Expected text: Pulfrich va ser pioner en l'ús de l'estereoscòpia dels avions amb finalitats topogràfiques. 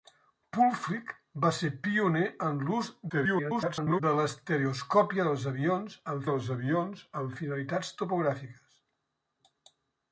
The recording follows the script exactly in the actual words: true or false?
false